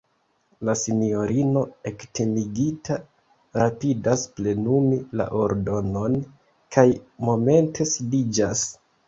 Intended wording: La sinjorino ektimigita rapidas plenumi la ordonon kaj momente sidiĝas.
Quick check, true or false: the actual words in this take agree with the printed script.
true